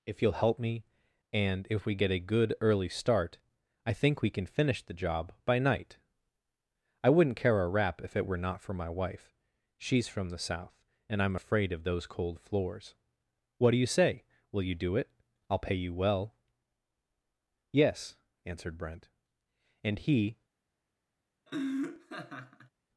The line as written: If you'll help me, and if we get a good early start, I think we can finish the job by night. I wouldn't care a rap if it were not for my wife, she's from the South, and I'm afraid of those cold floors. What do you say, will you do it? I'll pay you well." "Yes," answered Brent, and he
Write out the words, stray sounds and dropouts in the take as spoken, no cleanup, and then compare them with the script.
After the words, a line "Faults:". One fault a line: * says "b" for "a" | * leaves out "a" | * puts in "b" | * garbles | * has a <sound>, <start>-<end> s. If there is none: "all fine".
If you'll help me, and if we get a good early start, I think we can finish the job by night. I wouldn't care a rap if it were not for my wife, she's from the South, and I'm afraid of those cold floors. What do you say, will you do it? I'll pay you well." "Yes," answered Brent, and he
Faults:
* has a laugh, 21.5-22.7 s